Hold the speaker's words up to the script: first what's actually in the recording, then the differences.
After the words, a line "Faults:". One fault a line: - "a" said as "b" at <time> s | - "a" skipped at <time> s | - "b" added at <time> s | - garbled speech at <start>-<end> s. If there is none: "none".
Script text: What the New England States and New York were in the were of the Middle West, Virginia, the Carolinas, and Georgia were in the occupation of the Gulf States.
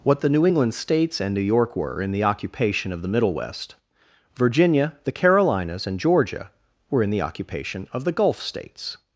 What the New England States and New York were in the occupation of the Middle West, Virginia, the Carolinas, and Georgia were in the occupation of the Gulf States.
Faults:
- "were" said as "occupation" at 2.2 s